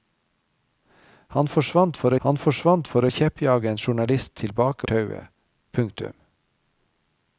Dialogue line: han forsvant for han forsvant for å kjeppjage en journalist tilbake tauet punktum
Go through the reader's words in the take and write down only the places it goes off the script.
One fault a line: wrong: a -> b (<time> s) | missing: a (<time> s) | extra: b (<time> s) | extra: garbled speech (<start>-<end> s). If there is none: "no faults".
no faults